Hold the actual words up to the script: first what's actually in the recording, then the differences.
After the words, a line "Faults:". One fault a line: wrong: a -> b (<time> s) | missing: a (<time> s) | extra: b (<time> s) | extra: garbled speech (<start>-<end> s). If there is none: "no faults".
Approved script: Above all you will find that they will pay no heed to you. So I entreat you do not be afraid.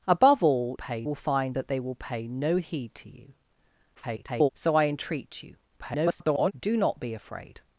Above all pay will find that they will pay no heed to you. [garbled] So I entreat you [garbled] do not be afraid.
Faults:
wrong: you -> pay (0.7 s)
extra: garbled speech (3.9-4.5 s)
extra: garbled speech (5.8-6.5 s)